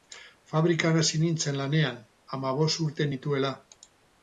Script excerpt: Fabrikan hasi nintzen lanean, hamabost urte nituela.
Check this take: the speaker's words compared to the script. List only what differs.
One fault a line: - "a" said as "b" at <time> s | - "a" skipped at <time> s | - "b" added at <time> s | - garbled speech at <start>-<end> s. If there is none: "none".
none